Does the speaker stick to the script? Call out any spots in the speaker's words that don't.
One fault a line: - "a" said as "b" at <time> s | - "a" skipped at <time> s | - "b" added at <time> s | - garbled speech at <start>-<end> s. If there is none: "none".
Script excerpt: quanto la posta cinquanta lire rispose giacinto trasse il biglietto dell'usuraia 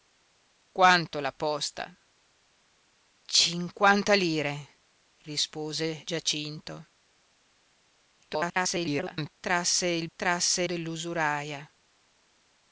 - garbled speech at 8.2-9.3 s
- "biglietto" said as "trasse" at 10.2 s